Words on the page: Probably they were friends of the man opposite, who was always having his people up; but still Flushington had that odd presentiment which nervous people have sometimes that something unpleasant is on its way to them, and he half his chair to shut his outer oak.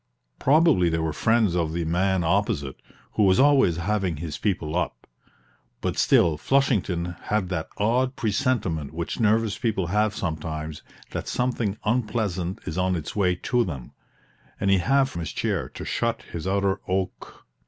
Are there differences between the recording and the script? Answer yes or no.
no